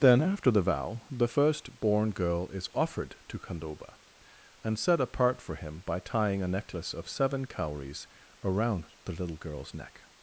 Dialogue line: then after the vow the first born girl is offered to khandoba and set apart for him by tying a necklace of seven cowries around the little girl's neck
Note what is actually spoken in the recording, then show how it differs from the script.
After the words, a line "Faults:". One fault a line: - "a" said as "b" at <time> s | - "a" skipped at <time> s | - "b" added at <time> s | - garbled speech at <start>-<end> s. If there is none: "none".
then after the vow the first born girl is offered to khandoba and set apart for him by tying a necklace of seven cowries around the little girl's neck
Faults:
none